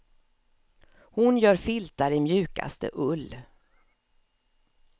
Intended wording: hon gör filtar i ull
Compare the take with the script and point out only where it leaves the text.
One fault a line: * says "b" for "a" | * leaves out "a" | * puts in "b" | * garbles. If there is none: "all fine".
* puts in "mjukaste"